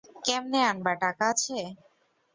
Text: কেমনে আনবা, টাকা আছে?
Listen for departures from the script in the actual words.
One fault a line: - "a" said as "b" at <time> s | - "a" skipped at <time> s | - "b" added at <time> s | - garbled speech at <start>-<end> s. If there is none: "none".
none